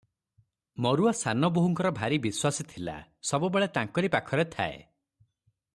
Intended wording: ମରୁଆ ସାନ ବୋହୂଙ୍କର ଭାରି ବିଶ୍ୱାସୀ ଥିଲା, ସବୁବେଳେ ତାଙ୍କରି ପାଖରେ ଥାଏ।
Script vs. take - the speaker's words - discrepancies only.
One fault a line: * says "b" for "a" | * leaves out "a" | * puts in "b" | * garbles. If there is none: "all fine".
all fine